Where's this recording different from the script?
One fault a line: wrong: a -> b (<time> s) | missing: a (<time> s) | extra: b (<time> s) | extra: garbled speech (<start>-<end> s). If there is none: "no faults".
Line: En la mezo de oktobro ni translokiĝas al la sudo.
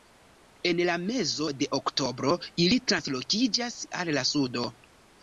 wrong: ni -> ili (2.6 s)